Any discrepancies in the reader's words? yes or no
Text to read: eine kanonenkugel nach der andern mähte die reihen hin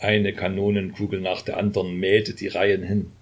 no